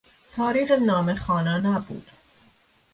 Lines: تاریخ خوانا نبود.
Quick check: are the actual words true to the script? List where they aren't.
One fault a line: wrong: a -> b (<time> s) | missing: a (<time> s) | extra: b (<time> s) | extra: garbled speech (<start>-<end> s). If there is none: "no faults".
extra: نامه (0.7 s)